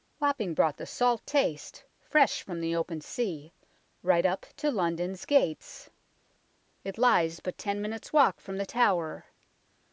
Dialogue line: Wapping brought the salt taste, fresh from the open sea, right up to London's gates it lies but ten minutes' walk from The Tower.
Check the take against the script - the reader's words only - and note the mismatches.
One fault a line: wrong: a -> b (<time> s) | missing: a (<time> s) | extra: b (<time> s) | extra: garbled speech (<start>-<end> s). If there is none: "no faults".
no faults